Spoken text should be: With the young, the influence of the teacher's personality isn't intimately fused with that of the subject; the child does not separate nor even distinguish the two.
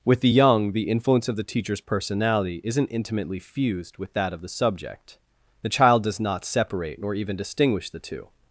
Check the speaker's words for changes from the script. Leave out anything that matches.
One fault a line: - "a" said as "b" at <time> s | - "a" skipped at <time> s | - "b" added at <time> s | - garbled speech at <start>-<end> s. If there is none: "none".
none